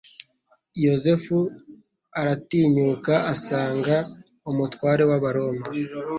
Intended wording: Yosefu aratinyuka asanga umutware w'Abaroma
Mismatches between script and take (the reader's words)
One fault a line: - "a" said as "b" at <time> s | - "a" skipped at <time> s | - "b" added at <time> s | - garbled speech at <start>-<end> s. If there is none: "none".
none